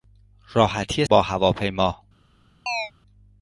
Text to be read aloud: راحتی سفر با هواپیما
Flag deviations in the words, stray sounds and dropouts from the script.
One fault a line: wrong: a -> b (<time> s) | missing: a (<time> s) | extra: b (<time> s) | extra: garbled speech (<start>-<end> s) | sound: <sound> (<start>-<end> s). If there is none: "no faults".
missing: سفر (1.1 s)
sound: chirp (2.7-2.9 s)